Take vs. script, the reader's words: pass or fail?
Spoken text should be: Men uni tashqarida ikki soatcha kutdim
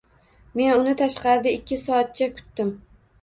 pass